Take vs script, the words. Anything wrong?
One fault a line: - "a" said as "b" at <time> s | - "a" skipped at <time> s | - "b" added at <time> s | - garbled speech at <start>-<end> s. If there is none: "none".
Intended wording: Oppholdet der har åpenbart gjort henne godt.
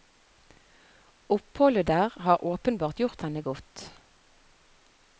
none